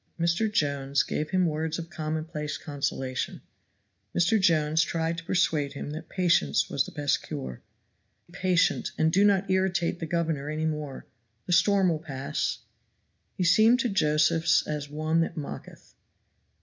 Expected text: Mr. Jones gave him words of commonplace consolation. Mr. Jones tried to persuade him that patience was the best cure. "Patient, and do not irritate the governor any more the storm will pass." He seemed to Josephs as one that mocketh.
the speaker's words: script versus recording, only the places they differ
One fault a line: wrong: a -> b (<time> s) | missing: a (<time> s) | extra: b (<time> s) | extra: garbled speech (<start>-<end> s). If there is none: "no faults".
no faults